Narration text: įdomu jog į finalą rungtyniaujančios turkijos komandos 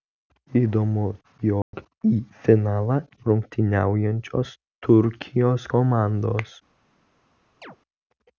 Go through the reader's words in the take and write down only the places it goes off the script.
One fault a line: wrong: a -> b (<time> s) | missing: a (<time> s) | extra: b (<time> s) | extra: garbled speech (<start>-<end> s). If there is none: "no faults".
no faults